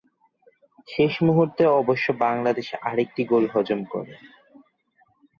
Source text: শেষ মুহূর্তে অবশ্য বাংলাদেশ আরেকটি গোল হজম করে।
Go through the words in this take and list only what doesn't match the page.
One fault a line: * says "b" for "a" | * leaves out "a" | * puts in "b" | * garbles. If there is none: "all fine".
all fine